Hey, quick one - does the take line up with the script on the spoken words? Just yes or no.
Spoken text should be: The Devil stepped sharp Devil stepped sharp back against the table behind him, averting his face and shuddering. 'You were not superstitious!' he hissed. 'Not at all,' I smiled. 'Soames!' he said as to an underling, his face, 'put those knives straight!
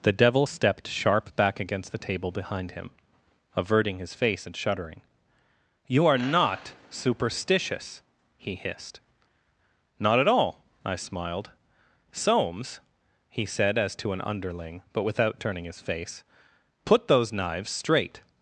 no